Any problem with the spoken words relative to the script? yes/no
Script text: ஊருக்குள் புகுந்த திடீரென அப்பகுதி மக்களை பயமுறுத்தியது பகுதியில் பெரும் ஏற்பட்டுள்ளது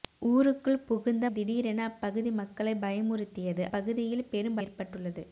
no